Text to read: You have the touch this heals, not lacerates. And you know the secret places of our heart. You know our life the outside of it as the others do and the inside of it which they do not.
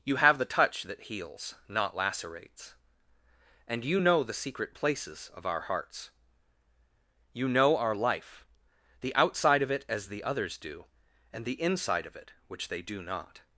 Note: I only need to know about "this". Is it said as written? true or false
false